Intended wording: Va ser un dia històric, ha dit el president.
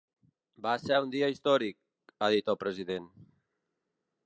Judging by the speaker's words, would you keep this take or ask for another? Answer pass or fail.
pass